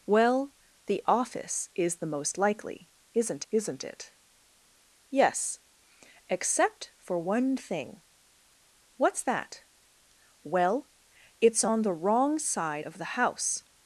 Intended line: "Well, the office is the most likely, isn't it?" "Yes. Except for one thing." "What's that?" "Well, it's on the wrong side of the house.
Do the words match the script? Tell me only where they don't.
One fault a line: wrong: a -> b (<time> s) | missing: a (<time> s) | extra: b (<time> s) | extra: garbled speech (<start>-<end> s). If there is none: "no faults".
extra: isn't (3.5 s)